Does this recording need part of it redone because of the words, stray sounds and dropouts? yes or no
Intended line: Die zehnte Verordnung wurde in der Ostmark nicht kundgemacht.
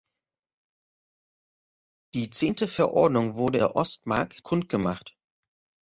yes